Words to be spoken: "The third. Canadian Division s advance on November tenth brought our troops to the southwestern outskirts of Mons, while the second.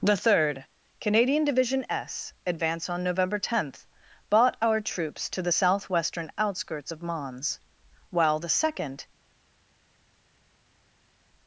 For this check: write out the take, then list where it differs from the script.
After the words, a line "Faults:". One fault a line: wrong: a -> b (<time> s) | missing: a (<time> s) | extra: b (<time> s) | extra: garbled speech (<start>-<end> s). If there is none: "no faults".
"The third. Canadian Division s advance on November tenth bought our troops to the southwestern outskirts of Mons, while the second.
Faults:
wrong: brought -> bought (4.3 s)